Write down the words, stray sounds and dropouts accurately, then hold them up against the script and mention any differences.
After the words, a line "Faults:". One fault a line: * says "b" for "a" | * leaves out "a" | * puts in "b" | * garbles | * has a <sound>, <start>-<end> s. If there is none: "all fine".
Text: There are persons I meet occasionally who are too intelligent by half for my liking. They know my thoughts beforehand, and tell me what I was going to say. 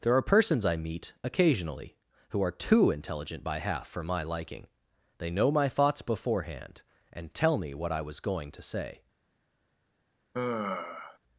There are persons I meet occasionally who are too intelligent by half for my liking. They know my thoughts beforehand, and tell me what I was going to say.
Faults:
* has a sigh, 10.3-11.2 s